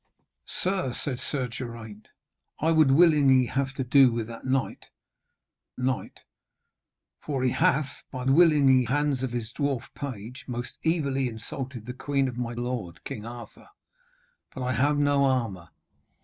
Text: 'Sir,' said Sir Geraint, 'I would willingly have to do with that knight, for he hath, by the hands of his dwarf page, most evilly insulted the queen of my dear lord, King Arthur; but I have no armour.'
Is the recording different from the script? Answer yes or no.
yes